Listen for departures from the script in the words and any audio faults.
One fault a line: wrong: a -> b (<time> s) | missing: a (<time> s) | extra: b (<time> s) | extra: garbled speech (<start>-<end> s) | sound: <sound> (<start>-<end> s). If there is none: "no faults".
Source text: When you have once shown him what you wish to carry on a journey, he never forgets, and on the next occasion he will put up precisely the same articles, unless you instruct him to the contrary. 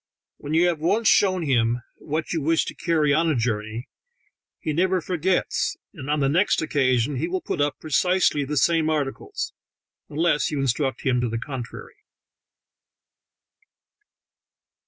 no faults